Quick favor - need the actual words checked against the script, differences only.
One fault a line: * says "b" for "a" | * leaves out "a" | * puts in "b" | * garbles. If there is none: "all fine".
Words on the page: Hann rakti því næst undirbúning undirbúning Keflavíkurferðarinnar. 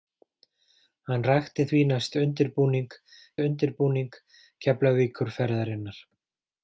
all fine